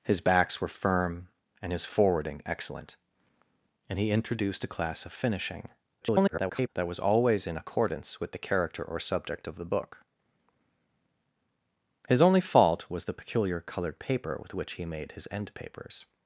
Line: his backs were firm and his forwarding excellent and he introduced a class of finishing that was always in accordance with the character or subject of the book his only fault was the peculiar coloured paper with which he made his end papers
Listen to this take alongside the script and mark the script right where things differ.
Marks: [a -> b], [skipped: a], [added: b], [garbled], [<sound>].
his backs were firm and his forwarding excellent and he introduced a class of finishing [garbled] that was always in accordance with the character or subject of the book his only fault was the peculiar coloured paper with which he made his end papers